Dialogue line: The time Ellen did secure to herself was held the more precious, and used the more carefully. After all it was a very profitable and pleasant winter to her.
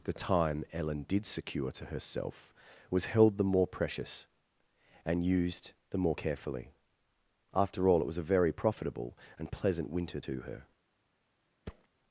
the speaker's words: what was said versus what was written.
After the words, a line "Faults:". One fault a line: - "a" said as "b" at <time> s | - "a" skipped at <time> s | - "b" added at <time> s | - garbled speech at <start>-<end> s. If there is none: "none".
The time Ellen did secure to herself was held the more precious, and used the more carefully. After all it was a very profitable and pleasant winter to her.
Faults:
none